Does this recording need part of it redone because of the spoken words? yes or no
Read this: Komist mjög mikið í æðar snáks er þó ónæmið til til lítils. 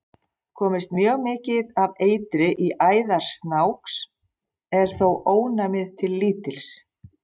yes